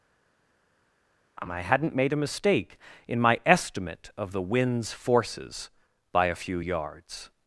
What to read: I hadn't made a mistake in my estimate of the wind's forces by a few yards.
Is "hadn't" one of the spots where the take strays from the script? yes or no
no